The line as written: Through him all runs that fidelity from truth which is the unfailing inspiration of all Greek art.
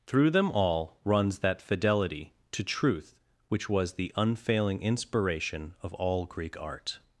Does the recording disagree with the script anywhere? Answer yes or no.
yes